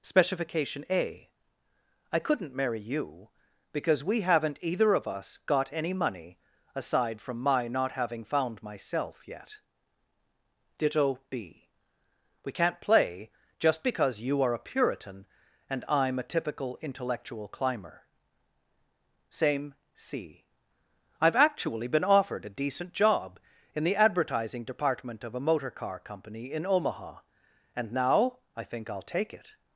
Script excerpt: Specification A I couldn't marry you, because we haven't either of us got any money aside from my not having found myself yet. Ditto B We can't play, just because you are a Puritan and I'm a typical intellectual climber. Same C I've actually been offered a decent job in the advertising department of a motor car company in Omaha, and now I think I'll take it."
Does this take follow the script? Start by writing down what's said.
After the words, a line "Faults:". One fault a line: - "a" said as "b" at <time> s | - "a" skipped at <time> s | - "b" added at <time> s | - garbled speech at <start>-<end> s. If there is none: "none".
Specification A I couldn't marry you, because we haven't either of us got any money aside from my not having found myself yet. Ditto B We can't play, just because you are a Puritan and I'm a typical intellectual climber. Same C I've actually been offered a decent job in the advertising department of a motor car company in Omaha, and now I think I'll take it."
Faults:
none